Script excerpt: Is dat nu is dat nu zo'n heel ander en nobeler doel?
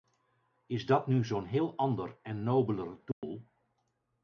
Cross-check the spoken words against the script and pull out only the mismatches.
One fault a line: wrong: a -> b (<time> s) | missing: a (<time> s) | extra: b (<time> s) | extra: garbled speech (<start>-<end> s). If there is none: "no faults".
missing: is dat nu (1.2 s)